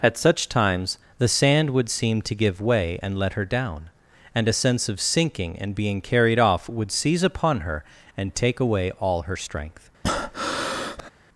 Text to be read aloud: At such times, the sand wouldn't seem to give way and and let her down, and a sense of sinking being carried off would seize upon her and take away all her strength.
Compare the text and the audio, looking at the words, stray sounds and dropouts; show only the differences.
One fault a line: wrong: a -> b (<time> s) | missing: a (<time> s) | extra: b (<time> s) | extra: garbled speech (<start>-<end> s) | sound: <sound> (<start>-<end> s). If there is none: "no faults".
wrong: wouldn't -> would (1.7 s)
missing: and (3.2 s)
extra: and (5.6 s)
sound: breath (10.0-11.1 s)